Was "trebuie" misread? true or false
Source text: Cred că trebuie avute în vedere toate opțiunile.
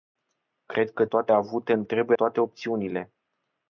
true